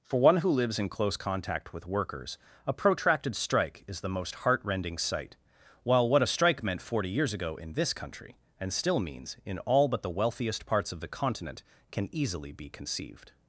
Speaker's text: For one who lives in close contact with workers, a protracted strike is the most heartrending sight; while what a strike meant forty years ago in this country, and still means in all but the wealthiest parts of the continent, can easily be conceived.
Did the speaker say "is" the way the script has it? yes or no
yes